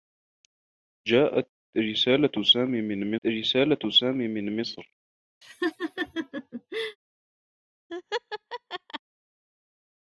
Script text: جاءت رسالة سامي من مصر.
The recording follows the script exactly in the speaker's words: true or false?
false